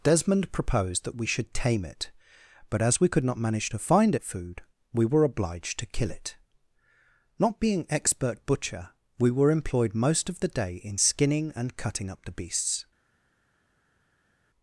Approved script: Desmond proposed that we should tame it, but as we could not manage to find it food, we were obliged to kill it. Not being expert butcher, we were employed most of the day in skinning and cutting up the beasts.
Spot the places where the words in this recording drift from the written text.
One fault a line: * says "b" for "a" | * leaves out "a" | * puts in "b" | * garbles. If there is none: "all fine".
all fine